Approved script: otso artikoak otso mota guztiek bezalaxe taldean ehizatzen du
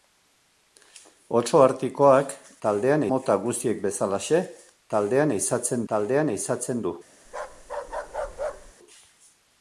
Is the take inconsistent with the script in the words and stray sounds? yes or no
yes